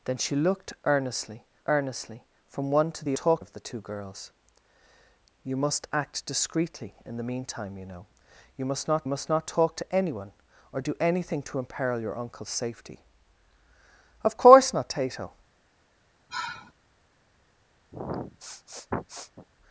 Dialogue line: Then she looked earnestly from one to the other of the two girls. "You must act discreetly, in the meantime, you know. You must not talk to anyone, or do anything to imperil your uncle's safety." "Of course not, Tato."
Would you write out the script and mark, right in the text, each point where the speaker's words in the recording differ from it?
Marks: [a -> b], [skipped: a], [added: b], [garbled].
Then she looked earnestly [added: earnestly] from one to the [other -> talk] of the two girls. "You must act discreetly, in the meantime, you know. You must not [added: must not] talk to anyone, or do anything to imperil your uncle's safety." "Of course not, Tato."